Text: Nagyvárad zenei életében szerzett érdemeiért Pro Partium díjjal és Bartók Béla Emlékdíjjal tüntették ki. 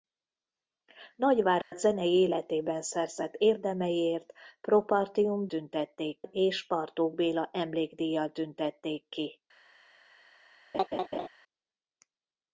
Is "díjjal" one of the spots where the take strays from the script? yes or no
yes